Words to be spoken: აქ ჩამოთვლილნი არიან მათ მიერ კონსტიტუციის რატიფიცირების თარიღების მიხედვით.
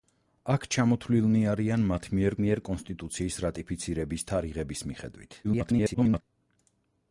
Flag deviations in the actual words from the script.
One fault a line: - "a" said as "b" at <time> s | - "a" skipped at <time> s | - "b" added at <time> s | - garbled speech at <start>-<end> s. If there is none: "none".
- "მიერ" added at 2.4 s
- garbled speech at 5.4-6.2 s